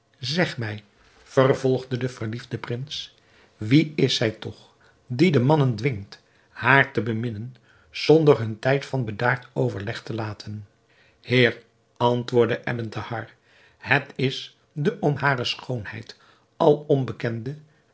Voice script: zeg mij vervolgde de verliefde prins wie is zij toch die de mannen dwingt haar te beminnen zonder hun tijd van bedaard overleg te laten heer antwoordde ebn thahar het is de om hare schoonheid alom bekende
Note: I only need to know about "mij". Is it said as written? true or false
true